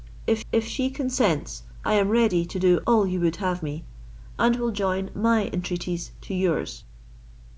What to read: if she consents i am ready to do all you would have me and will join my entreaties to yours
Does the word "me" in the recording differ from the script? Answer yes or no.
no